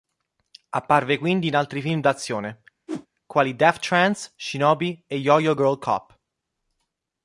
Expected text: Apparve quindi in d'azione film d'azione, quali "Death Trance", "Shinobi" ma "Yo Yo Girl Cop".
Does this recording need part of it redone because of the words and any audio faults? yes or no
yes